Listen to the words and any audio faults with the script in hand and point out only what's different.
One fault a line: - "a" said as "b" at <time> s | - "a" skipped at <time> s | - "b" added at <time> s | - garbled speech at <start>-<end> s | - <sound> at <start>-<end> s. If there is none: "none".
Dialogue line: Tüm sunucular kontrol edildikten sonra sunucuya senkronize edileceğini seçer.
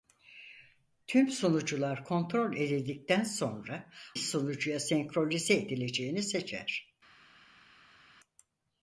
none